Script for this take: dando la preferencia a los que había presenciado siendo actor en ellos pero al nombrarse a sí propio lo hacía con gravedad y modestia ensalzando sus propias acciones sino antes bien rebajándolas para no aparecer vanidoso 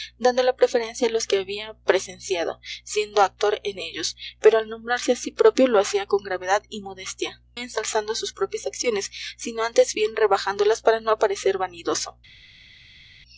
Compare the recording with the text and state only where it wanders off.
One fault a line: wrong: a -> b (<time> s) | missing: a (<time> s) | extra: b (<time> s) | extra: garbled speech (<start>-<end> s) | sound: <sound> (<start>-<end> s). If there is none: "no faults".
no faults